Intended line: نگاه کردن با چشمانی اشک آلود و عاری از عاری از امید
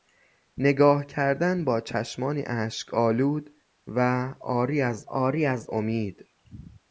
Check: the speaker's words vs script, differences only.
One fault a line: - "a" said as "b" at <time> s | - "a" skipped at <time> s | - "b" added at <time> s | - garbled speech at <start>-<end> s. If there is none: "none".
none